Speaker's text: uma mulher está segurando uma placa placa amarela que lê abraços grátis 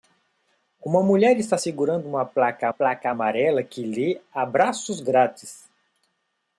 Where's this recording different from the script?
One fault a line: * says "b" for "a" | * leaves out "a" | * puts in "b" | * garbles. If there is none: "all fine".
all fine